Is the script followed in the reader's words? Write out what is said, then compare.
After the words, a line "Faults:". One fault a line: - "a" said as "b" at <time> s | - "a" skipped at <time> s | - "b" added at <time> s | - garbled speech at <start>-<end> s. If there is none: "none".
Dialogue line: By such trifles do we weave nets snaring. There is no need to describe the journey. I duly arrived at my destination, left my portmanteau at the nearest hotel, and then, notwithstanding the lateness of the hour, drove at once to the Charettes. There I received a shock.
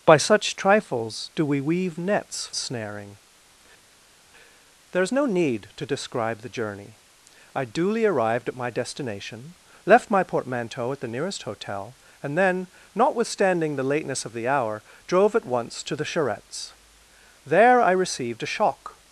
By such trifles do we weave nets snaring. There is no need to describe the journey. I duly arrived at my destination, left my portmanteau at the nearest hotel, and then, notwithstanding the lateness of the hour, drove at once to the Charettes. There I received a shock.
Faults:
none